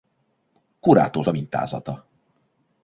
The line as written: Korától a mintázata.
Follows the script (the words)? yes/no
yes